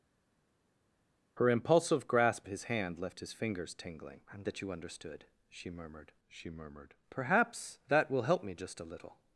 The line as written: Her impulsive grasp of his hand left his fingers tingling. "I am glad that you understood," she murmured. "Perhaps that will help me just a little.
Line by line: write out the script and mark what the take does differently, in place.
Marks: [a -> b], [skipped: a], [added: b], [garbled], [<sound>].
Her impulsive grasp [skipped: of] his hand left his fingers tingling. "I am [skipped: glad] that you understood," she murmured. [added: she murmured] "Perhaps that will help me just a little.